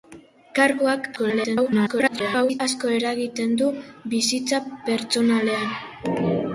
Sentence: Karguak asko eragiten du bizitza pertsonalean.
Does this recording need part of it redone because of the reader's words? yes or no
yes